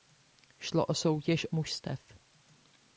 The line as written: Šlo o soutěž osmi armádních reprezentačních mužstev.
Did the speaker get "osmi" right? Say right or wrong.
wrong